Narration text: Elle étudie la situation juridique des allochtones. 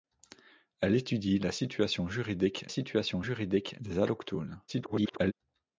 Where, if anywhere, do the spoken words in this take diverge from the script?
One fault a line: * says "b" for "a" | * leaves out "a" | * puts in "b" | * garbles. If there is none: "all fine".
* puts in "situation juridique"
* garbles